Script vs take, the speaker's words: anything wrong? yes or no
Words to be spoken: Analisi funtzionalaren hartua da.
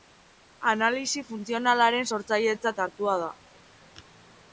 yes